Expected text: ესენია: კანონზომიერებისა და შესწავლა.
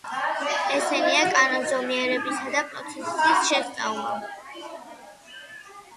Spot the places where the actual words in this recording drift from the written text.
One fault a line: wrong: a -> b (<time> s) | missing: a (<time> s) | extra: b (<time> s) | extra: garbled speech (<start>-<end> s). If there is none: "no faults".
extra: პროცესის (2.7 s)